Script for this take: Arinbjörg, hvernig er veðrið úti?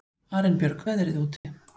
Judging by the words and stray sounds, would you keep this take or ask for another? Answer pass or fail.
fail